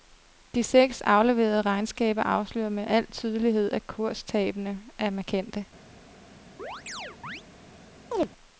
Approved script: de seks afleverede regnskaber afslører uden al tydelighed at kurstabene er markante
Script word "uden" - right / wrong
wrong